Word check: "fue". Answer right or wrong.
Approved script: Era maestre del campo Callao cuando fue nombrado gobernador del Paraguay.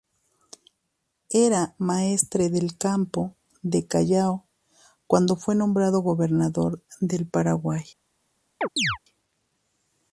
right